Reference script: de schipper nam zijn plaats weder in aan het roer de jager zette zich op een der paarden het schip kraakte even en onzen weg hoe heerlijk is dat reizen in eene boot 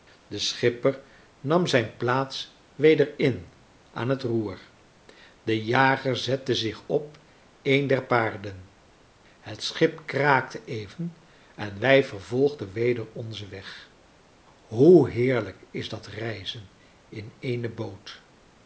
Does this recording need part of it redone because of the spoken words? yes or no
yes